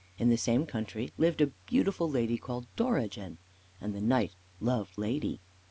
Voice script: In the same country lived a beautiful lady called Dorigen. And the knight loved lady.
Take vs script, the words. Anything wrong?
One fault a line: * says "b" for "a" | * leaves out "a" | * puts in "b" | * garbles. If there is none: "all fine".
all fine